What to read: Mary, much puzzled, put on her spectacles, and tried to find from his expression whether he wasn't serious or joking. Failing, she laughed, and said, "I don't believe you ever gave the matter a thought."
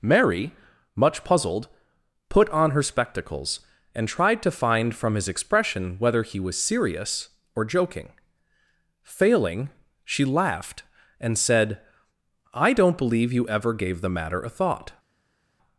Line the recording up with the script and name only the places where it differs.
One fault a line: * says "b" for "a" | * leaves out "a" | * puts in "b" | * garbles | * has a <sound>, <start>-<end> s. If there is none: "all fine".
* says "was" for "wasn't"